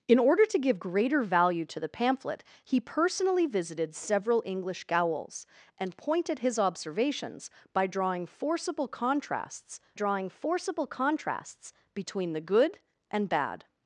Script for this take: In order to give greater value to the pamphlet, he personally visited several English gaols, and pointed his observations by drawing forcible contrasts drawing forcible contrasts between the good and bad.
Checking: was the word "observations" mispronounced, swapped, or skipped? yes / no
no